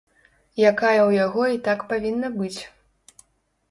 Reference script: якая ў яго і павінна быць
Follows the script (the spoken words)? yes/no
no